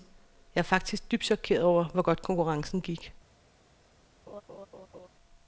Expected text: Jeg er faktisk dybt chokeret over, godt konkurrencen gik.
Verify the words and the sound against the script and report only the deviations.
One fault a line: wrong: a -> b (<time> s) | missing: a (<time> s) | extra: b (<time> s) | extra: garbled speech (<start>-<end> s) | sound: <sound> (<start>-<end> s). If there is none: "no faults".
extra: hvor (1.8 s)
sound: laugh (4.3-5.1 s)